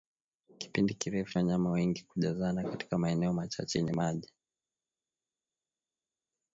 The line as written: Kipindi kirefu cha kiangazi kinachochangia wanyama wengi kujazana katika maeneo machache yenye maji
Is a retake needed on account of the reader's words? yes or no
yes